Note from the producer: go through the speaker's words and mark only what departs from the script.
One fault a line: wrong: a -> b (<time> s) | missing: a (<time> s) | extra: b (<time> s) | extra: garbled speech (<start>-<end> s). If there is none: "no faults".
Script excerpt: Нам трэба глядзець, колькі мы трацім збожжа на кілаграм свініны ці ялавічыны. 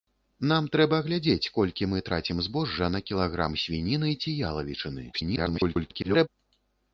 extra: garbled speech (5.1-6.3 s)